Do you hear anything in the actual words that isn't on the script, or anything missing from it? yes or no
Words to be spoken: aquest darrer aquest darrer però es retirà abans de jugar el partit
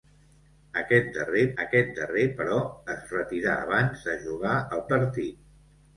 no